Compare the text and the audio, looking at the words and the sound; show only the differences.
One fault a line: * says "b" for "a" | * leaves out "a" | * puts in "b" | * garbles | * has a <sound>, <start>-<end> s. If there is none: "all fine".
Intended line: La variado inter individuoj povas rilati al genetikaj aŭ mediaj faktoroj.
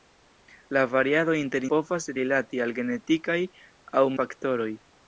* leaves out "individuoj"
* leaves out "mediaj"